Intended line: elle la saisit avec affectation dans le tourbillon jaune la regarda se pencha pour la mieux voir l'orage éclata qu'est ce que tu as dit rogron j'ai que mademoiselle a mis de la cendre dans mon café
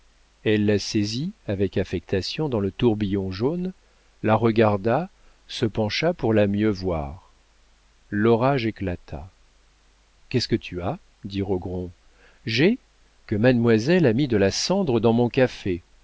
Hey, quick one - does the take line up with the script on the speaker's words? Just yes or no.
yes